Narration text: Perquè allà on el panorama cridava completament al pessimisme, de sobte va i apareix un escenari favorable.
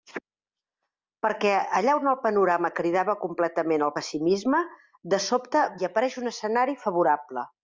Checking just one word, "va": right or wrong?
wrong